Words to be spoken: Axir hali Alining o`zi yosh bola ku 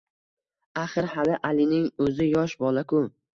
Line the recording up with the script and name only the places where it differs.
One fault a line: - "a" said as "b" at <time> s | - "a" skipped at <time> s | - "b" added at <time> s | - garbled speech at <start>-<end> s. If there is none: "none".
none